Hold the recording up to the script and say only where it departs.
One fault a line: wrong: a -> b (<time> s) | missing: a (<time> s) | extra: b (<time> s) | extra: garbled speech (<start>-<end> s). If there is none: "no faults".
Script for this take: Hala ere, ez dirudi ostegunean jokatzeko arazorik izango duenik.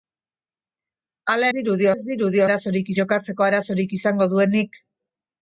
wrong: ere -> dirudi (1.6 s)
wrong: ostegunean -> arazorik (2.4 s)